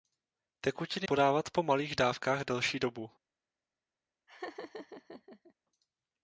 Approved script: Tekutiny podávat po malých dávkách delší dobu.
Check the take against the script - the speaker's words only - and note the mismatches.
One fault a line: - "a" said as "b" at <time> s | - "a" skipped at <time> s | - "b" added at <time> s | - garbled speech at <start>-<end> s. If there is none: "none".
none